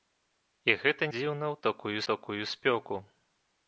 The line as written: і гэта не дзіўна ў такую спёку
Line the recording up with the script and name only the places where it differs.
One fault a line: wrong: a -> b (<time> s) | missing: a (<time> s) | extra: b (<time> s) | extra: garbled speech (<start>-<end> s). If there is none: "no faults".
missing: не (1.0 s)
extra: такую (2.1 s)